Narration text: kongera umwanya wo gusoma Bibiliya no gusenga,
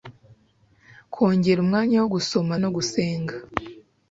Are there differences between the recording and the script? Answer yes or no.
yes